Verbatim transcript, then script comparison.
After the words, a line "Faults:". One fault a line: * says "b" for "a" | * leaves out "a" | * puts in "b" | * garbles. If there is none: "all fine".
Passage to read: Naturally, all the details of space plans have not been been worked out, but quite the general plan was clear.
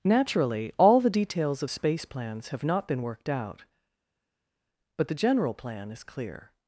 Naturally, all the details of space plans have not been worked out, but the general plan is clear.
Faults:
* leaves out "been"
* leaves out "quite"
* says "is" for "was"